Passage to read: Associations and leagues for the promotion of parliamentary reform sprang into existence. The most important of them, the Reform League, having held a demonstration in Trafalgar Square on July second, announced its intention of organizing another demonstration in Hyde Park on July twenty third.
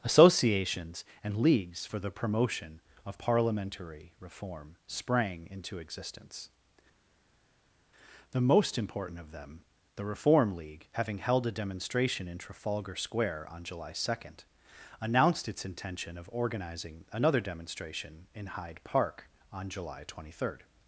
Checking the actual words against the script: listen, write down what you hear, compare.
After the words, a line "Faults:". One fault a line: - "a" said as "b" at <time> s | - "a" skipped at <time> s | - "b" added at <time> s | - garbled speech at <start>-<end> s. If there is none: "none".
Associations and leagues for the promotion of parliamentary reform sprang into existence. The most important of them, the Reform League, having held a demonstration in Trafalgar Square on July second, announced its intention of organizing another demonstration in Hyde Park on July twenty third.
Faults:
none